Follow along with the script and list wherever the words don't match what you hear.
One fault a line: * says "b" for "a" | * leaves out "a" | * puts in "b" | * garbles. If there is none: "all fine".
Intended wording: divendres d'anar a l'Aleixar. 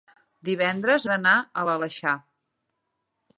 all fine